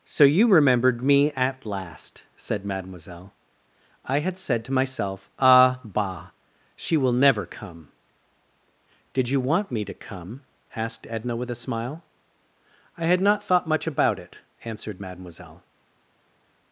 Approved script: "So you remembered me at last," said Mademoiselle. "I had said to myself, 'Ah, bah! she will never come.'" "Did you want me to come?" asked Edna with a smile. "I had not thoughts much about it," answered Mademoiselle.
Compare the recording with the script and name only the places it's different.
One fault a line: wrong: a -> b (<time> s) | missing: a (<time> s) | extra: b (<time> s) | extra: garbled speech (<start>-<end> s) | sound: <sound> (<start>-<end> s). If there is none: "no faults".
wrong: thoughts -> thought (13.4 s)